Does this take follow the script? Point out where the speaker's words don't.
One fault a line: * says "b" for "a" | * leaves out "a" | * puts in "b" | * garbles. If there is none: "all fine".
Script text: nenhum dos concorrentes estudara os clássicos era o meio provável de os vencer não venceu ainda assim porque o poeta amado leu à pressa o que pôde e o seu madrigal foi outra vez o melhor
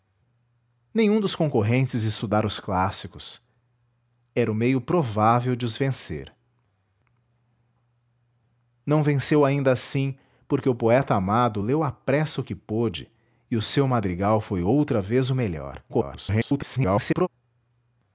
* garbles